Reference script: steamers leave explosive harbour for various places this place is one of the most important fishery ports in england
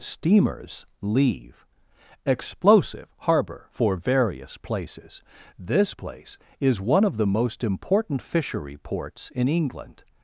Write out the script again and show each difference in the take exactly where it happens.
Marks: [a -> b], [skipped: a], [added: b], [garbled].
steamers leave explosive harbour for various places this place is one of the most important fishery ports in england